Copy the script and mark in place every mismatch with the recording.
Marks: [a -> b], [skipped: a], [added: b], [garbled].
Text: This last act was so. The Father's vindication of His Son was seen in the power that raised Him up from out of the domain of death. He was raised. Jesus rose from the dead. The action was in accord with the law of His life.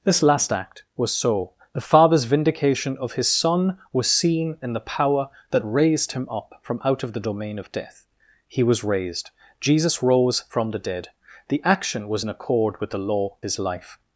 This last act was so. The Father's vindication of His Son was seen in the power that raised Him up from out of the domain of death. He was raised. Jesus rose from the dead. The action was in accord with the law [skipped: of] His life.